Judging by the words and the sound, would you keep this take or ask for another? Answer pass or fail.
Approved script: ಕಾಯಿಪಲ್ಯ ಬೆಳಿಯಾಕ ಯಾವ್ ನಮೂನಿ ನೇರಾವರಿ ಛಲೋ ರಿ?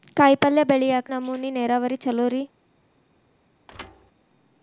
fail